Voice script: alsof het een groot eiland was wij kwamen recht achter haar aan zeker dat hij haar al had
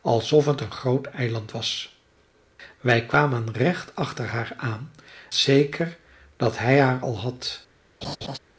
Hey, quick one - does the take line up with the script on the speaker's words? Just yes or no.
yes